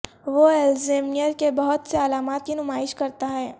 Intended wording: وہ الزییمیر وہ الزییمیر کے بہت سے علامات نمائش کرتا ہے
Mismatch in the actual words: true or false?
true